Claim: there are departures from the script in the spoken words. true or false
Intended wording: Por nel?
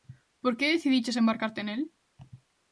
true